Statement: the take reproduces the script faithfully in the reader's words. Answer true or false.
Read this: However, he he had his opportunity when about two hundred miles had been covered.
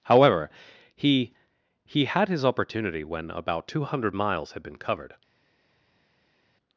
true